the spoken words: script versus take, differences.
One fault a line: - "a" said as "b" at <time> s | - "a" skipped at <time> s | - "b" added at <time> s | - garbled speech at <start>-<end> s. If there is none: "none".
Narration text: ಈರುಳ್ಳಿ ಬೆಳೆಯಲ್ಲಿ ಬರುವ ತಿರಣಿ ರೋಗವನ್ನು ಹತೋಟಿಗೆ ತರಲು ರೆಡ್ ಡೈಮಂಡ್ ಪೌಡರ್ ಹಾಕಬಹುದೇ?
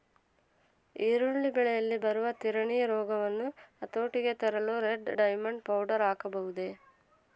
none